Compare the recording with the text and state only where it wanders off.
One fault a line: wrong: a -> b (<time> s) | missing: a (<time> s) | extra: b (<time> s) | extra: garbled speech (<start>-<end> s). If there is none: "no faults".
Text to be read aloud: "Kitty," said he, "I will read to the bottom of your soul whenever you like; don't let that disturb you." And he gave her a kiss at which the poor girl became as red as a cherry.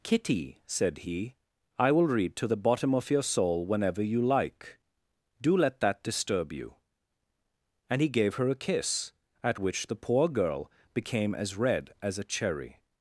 wrong: don't -> do (5.4 s)